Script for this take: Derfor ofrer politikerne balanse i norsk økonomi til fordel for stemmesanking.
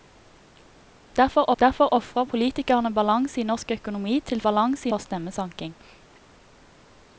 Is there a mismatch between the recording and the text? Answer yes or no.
yes